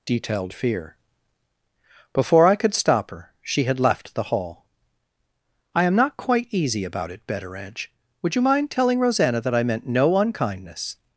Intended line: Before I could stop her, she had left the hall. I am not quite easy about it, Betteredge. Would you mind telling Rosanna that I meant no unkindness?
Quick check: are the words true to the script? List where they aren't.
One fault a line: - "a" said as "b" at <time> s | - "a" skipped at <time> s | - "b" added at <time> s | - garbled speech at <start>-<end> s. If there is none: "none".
- "detailed fear" added at 0.1 s